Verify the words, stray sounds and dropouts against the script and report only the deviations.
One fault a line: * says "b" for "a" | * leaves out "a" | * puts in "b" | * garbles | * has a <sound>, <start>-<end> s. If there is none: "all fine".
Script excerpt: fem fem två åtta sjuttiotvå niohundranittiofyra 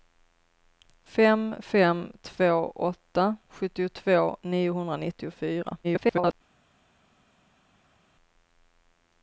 * garbles